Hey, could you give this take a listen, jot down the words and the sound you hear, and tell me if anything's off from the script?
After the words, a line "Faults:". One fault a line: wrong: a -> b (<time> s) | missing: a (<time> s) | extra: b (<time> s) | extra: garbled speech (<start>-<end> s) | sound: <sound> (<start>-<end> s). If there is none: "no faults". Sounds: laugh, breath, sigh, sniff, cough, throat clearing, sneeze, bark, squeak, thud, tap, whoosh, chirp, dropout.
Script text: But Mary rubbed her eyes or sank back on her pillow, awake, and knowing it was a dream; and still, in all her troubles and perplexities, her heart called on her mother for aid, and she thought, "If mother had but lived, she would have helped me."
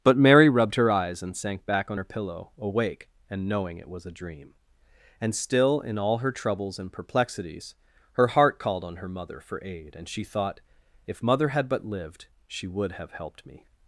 But Mary rubbed her eyes and sank back on her pillow, awake, and knowing it was a dream; and still, in all her troubles and perplexities, her heart called on her mother for aid, and she thought, "If mother had but lived, she would have helped me."
Faults:
wrong: or -> and (1.2 s)